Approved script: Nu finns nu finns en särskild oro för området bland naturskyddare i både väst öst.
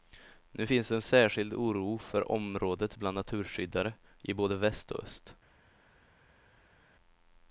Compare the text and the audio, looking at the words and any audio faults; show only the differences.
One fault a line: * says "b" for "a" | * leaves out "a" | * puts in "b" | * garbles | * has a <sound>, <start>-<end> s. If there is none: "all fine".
* leaves out "nu finns"
* puts in "och"